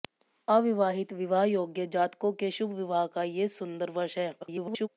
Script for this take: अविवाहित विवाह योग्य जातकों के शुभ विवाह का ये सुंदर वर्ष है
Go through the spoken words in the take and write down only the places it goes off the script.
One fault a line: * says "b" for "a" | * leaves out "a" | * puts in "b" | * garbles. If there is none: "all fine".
* garbles